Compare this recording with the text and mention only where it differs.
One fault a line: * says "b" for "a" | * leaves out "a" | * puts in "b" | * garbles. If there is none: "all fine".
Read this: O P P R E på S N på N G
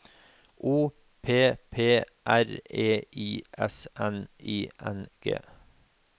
* says "I" for "på"
* says "I" for "på"